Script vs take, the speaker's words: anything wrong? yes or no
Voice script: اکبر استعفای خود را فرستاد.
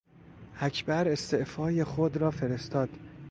no